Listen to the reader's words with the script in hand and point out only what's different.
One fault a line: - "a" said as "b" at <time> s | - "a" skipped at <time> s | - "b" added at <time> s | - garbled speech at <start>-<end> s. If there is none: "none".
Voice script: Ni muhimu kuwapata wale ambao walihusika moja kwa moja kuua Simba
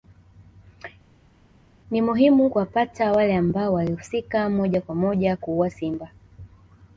none